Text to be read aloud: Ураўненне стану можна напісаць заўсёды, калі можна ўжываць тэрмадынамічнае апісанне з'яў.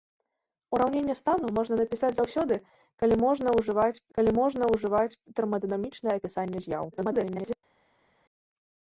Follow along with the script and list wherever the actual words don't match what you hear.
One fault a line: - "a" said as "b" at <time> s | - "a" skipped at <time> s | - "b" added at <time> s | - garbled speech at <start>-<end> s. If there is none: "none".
- "калі можна ўжываць" added at 4.2 s
- garbled speech at 6.9-7.6 s